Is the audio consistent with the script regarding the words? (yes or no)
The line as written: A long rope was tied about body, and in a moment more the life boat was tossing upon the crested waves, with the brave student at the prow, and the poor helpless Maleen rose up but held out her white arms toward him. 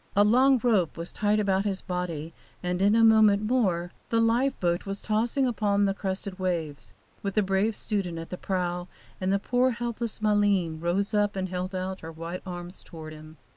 no